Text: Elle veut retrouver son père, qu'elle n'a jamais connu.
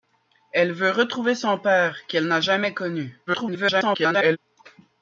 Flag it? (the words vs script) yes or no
yes